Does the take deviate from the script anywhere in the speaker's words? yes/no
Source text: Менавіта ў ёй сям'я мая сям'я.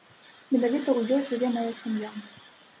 yes